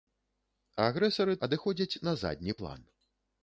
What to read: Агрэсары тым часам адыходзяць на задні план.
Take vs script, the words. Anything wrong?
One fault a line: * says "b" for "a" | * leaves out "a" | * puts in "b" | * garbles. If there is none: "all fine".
* leaves out "тым часам"